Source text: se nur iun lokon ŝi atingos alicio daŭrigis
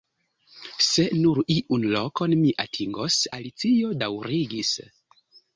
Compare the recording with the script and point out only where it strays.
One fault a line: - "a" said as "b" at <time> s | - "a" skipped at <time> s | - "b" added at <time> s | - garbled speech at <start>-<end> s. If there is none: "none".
- "ŝi" said as "mi" at 2.4 s